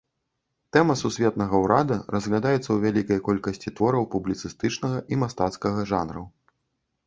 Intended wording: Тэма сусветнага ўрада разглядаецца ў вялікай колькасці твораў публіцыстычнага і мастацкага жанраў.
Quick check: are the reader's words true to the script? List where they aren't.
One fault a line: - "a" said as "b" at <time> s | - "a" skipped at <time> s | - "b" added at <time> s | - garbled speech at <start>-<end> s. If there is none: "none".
none